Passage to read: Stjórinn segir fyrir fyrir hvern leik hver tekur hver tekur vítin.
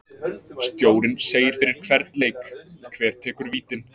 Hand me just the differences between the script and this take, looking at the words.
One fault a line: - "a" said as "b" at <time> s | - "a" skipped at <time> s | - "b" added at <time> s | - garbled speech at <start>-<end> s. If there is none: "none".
- "fyrir" skipped at 1.8 s
- "hver tekur" skipped at 3.5 s